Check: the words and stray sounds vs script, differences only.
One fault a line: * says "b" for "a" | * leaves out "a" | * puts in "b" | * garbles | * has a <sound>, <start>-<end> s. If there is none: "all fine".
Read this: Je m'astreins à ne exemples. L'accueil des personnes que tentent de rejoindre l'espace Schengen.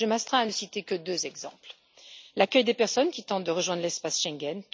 * puts in "citer que deux"
* says "qui" for "que"